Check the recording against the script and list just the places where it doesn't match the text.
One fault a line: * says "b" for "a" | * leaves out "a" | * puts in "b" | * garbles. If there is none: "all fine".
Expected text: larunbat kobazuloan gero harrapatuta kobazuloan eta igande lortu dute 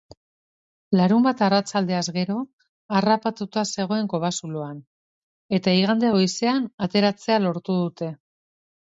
* says "arratsaldeaz" for "kobazuloan"
* puts in "zegoen"
* puts in "goizean ateratzea"